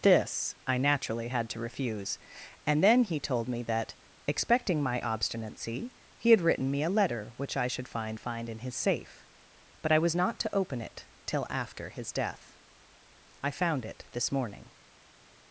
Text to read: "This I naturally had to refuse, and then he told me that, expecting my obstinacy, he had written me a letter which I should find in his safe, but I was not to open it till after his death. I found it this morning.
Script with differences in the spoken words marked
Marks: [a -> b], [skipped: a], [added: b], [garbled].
"This I naturally had to refuse, and then he told me that, expecting my obstinacy, he had written me a letter which I should find [added: find] in his safe, but I was not to open it till after his death. I found it this morning.